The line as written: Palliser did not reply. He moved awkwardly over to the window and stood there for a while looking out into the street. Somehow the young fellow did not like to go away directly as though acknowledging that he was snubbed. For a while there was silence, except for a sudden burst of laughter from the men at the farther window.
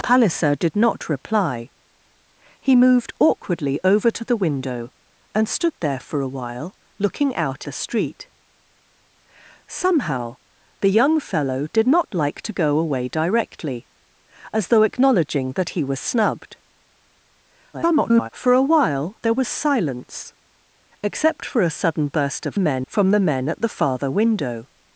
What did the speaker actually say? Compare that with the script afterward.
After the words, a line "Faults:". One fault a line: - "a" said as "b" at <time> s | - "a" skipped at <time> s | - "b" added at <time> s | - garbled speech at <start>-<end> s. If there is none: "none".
Palliser did not reply. He moved awkwardly over to the window and stood there for a while looking out the street. Somehow the young fellow did not like to go away directly as though acknowledging that he was snubbed. [garbled] For a while there was silence, except for a sudden burst of men from the men at the farther window.
Faults:
- "into" skipped at 7.7 s
- garbled speech at 17.7-18.3 s
- "laughter" said as "men" at 22.6 s